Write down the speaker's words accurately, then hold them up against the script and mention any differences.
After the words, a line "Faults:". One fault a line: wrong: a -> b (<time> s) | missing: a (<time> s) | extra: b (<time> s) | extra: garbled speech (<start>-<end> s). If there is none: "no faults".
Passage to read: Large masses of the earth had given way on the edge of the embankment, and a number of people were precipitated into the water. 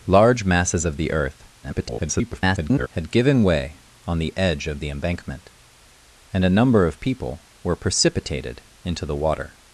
Large masses of the earth [garbled] had given way on the edge of the embankment, and a number of people were precipitated into the water.
Faults:
extra: garbled speech (1.6-2.9 s)